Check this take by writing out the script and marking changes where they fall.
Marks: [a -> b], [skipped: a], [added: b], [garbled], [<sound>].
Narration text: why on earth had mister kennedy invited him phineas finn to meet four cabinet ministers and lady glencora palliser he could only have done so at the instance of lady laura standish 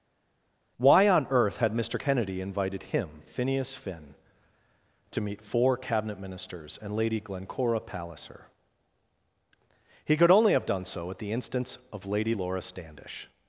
why on earth had mister kennedy invited him phineas finn to meet four cabinet ministers and lady glencora palliser he could only have done so at the instance of lady laura standish